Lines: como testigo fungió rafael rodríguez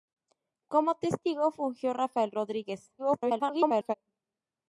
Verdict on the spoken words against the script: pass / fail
fail